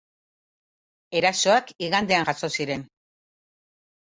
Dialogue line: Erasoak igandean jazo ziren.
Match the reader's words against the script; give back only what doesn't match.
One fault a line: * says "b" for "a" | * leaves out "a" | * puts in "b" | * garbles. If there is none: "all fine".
all fine